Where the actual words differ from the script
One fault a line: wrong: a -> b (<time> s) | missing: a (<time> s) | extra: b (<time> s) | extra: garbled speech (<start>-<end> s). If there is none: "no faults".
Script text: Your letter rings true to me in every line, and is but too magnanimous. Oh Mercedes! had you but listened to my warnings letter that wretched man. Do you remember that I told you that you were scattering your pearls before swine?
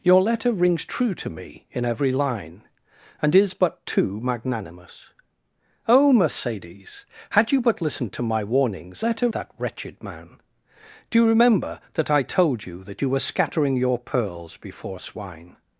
no faults